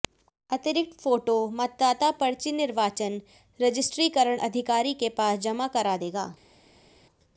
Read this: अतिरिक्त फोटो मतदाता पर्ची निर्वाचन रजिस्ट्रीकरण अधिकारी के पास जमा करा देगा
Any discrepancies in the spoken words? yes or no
no